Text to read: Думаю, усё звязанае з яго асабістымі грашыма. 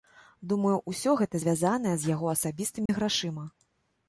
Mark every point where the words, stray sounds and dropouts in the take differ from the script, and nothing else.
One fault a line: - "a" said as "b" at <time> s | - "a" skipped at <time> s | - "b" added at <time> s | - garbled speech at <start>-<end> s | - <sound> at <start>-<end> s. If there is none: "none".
- "гэта" added at 1.2 s
- dropout at 2.9-2.9 s